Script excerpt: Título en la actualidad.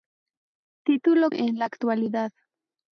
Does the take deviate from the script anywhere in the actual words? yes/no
no